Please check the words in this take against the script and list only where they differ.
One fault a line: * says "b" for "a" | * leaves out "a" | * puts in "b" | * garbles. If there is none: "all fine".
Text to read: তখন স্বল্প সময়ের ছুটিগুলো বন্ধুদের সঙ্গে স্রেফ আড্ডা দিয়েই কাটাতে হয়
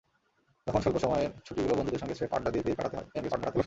* puts in "দিয়েই"
* garbles